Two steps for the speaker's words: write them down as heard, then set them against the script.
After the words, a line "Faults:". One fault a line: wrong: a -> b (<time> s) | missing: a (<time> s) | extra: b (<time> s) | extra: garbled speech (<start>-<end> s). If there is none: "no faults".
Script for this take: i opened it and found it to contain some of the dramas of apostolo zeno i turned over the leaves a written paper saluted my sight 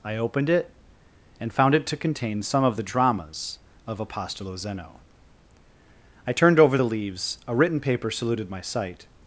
i opened it and found it to contain some of the dramas of apostolo zeno i turned over the leaves a written paper saluted my sight
Faults:
no faults